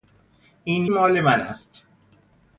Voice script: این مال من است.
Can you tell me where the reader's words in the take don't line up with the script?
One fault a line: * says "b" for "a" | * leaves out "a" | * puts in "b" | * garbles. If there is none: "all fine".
all fine